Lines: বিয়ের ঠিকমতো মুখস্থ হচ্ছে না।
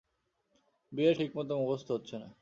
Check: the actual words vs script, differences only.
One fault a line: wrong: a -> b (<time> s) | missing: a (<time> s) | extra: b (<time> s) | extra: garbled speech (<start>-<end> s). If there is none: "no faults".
no faults